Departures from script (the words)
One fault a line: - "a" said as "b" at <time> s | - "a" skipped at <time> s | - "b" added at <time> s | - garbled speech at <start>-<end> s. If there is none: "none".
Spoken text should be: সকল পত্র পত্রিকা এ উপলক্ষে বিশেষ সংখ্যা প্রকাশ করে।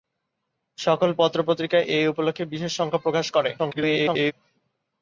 - garbled speech at 3.6-4.3 s